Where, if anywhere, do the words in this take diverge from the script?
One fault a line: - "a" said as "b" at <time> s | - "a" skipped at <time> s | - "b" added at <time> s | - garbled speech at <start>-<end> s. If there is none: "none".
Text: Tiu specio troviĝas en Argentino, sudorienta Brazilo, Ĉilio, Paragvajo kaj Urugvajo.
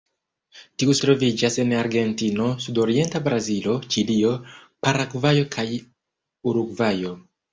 - "specio" skipped at 0.9 s